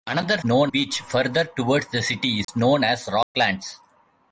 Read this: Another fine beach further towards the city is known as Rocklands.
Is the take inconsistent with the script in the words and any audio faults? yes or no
yes